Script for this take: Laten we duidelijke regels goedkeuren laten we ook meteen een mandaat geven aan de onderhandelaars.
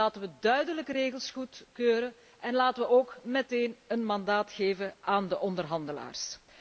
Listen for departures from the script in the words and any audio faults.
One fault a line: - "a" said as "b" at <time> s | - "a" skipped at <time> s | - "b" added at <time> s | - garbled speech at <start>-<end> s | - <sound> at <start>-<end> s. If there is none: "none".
- "en" added at 2.4 s